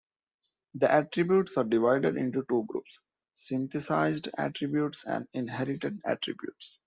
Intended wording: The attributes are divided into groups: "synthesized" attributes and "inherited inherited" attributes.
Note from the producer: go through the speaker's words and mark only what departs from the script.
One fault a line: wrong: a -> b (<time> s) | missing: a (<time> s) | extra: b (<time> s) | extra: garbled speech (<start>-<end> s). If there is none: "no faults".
extra: two (2.5 s)
missing: inherited (6.0 s)